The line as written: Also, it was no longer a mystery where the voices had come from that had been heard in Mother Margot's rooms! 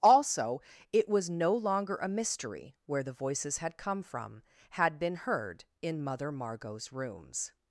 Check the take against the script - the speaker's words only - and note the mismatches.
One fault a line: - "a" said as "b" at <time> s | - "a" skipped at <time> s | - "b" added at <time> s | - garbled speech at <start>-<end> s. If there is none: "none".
- "that" skipped at 4.4 s